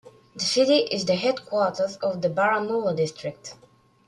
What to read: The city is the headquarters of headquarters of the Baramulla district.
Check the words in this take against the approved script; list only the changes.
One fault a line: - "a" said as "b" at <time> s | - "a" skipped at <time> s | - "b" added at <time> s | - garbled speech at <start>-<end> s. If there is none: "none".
- "headquarters of" skipped at 2.2 s